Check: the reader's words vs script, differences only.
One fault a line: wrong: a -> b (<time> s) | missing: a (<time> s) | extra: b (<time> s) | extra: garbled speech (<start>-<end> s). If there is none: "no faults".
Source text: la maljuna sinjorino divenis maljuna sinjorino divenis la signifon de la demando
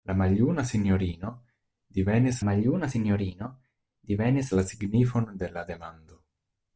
no faults